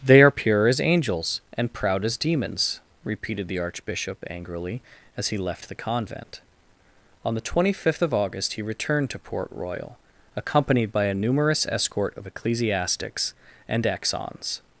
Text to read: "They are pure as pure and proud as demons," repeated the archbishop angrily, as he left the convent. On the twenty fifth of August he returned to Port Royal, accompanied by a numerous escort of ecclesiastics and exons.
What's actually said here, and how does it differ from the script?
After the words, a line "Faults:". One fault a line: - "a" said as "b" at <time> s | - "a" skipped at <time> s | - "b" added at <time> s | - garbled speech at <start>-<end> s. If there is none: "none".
"They are pure as angels and proud as demons," repeated the archbishop angrily, as he left the convent. On the twenty fifth of August he returned to Port Royal, accompanied by a numerous escort of ecclesiastics and exons.
Faults:
- "pure" said as "angels" at 0.8 s